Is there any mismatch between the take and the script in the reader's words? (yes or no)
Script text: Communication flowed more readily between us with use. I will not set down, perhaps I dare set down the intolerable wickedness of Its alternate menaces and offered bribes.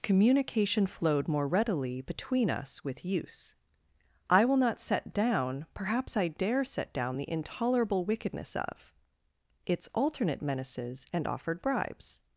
no